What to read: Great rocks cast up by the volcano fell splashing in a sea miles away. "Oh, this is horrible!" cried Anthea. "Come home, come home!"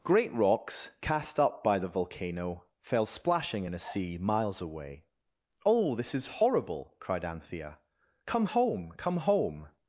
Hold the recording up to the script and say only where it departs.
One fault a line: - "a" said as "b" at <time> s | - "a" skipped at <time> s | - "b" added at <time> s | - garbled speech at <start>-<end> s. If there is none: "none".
none